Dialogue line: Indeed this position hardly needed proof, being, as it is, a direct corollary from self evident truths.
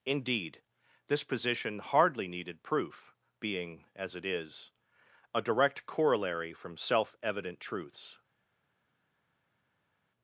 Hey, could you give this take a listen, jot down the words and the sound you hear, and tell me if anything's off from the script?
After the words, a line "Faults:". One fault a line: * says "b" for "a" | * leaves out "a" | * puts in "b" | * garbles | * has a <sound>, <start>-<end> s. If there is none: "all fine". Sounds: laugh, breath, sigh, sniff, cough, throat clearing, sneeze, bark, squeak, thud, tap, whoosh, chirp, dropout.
Indeed this position hardly needed proof, being, as it is, a direct corollary from self evident truths.
Faults:
all fine